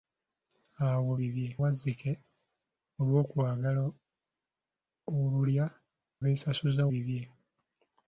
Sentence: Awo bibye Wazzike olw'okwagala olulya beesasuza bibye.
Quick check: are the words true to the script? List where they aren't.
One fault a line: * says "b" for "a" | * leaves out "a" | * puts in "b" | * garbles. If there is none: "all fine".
all fine